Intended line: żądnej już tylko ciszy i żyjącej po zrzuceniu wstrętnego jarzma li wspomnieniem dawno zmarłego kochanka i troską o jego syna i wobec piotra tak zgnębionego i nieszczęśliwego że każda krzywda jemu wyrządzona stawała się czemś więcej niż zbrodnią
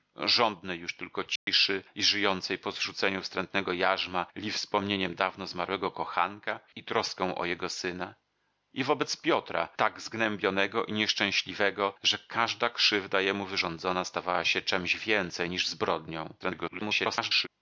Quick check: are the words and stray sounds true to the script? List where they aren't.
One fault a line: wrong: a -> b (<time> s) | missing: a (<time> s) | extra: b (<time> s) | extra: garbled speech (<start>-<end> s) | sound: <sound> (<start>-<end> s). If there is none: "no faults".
sound: dropout (1.4-1.5 s)
extra: garbled speech (16.4-17.5 s)